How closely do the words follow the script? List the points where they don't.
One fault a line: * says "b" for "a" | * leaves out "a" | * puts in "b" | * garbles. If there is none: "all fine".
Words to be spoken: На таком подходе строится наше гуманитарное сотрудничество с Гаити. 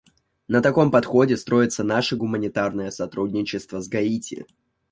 all fine